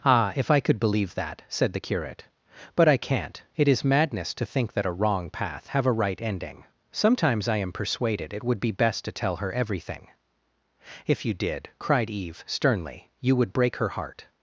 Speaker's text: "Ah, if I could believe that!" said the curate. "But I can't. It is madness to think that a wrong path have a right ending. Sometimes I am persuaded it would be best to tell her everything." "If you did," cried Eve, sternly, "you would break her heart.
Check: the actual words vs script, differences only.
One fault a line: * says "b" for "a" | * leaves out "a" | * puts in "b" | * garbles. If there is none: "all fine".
all fine